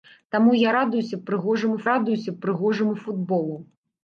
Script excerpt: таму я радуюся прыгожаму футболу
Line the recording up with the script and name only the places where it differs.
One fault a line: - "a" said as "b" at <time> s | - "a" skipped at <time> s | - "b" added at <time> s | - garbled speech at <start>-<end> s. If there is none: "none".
- "радуюся прыгожаму" added at 1.9 s